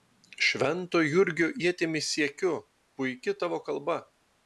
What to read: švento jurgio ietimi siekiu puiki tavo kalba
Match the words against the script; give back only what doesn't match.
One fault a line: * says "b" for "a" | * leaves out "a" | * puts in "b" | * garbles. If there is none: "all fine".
all fine